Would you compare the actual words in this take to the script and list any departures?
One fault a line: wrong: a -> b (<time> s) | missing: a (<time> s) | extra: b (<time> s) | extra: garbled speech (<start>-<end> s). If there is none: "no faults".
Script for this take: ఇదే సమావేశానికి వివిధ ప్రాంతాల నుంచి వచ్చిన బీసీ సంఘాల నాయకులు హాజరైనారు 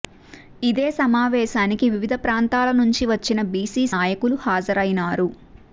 missing: సంఘాల (3.9 s)